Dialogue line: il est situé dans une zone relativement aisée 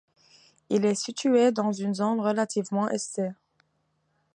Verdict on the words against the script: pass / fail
pass